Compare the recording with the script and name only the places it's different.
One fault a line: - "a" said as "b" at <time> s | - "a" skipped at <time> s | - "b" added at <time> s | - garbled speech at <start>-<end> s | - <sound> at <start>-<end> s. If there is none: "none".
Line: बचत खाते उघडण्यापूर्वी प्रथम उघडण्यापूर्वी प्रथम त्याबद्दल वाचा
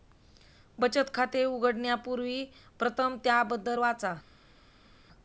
- "उघडण्यापूर्वी प्रथम" skipped at 3.2 s